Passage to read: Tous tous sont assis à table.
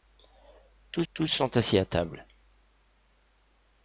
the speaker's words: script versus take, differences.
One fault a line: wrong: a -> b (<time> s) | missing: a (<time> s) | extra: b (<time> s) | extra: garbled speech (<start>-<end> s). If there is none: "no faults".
no faults